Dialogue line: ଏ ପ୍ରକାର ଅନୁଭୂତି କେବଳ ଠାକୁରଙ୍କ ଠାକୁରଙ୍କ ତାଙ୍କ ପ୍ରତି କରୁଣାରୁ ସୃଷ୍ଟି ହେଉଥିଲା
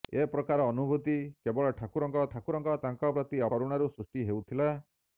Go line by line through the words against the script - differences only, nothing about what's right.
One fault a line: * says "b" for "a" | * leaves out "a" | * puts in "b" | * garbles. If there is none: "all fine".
all fine